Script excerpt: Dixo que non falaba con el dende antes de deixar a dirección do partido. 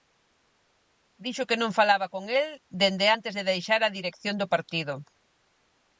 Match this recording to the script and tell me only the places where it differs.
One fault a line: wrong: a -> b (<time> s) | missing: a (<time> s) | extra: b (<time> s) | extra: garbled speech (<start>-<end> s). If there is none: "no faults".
no faults